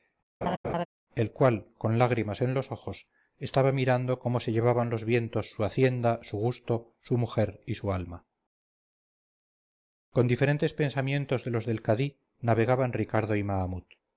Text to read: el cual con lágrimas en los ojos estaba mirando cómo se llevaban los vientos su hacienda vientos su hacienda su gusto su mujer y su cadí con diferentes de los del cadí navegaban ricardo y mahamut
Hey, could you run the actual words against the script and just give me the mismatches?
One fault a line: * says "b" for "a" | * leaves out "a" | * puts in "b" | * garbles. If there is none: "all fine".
* leaves out "vientos"
* leaves out "hacienda su"
* says "alma" for "cadí"
* puts in "pensamientos"